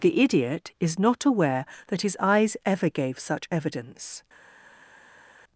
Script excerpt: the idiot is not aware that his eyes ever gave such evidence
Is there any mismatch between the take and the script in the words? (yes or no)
no